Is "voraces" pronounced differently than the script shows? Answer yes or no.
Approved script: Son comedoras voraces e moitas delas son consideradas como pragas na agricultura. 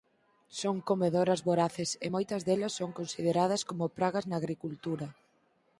no